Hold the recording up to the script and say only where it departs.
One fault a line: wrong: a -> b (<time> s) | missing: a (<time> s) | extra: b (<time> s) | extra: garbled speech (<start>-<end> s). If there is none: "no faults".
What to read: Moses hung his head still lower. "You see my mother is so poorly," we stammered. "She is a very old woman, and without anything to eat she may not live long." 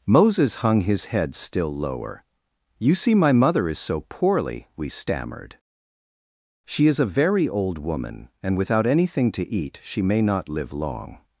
no faults